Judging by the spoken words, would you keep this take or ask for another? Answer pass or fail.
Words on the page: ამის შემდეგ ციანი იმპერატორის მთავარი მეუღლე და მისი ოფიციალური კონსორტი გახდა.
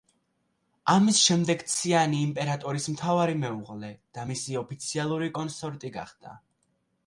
pass